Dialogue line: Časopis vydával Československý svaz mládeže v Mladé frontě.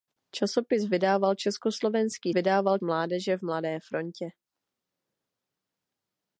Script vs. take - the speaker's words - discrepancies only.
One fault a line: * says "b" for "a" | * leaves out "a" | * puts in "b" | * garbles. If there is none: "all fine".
* says "vydával" for "svaz"